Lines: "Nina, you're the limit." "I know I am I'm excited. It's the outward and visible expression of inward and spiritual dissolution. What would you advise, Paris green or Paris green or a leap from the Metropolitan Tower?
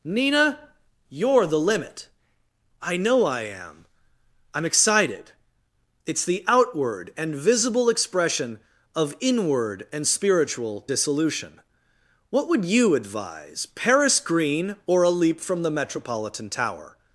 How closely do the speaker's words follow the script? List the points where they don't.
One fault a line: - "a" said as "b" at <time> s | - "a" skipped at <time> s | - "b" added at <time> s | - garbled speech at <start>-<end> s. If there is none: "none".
- "Paris green or" skipped at 15.0 s